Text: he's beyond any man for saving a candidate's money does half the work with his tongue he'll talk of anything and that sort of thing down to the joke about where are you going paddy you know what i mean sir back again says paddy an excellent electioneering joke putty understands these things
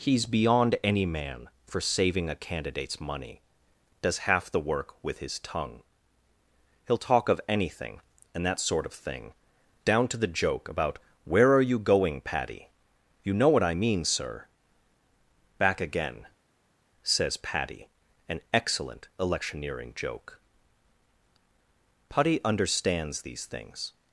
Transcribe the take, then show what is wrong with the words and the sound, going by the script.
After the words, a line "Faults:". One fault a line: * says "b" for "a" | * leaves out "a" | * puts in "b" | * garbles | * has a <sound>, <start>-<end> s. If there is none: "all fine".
he's beyond any man for saving a candidate's money does half the work with his tongue he'll talk of anything and that sort of thing down to the joke about where are you going paddy you know what i mean sir back again says paddy an excellent electioneering joke putty understands these things
Faults:
all fine